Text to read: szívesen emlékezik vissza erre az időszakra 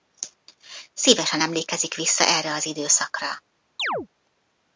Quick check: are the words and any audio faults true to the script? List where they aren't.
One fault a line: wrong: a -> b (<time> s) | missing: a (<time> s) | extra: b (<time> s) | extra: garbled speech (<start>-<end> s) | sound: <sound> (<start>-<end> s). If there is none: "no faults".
sound: chirp (3.8-4.1 s)